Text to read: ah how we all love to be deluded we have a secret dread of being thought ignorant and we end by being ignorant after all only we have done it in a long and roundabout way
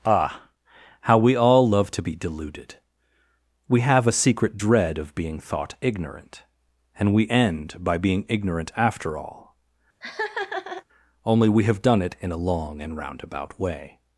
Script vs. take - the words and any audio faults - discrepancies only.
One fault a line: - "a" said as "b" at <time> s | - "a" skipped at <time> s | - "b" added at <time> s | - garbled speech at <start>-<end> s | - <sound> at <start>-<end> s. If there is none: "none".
- laugh at 10.0-10.8 s